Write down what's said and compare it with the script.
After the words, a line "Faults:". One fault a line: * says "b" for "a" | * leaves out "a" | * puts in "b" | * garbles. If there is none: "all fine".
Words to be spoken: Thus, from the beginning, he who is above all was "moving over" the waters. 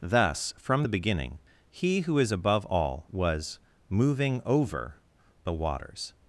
Thus, from the beginning, he who is above all was "moving over" the waters.
Faults:
all fine